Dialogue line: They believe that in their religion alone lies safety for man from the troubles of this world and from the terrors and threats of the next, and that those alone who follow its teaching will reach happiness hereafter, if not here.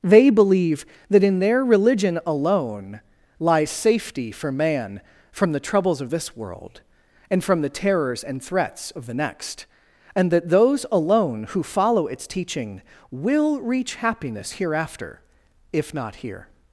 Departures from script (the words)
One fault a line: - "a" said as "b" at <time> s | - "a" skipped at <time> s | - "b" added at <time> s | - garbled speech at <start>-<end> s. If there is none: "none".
none